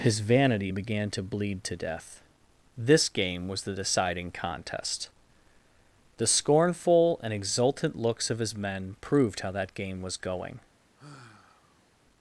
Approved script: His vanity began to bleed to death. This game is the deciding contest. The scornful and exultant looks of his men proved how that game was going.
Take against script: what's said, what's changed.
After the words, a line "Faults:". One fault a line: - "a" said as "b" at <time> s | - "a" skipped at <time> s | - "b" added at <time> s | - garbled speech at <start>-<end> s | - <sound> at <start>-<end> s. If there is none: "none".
His vanity began to bleed to death. This game was the deciding contest. The scornful and exultant looks of his men proved how that game was going.
Faults:
- "is" said as "was" at 3.5 s
- sigh at 11.0-11.9 s